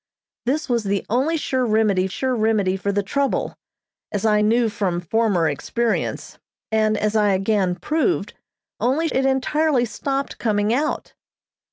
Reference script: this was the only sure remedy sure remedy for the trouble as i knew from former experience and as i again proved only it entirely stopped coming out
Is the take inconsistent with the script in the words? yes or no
no